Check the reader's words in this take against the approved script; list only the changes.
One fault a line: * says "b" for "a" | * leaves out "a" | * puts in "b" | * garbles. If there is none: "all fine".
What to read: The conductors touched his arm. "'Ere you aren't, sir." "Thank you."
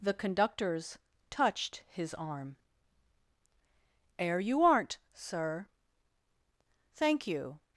all fine